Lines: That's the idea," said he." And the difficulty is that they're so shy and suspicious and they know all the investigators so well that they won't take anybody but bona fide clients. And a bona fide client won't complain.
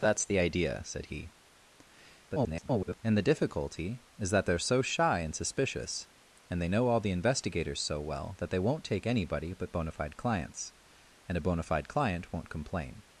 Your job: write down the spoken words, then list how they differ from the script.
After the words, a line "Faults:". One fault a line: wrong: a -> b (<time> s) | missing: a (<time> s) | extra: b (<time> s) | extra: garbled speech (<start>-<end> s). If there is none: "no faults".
That's the idea," said he." [garbled] And the difficulty is that they're so shy and suspicious and they know all the investigators so well that they won't take anybody but bona fide clients. And a bona fide client won't complain.
Faults:
extra: garbled speech (2.3-3.0 s)